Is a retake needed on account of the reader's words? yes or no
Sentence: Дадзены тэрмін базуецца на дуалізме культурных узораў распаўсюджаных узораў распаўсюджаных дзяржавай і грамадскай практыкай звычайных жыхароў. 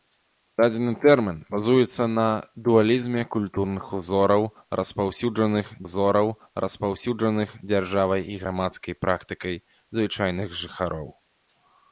no